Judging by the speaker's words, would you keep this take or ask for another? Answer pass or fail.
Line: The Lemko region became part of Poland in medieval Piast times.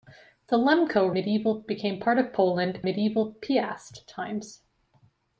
fail